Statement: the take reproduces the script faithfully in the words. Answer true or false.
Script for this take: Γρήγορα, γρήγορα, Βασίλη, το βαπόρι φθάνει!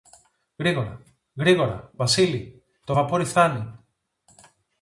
true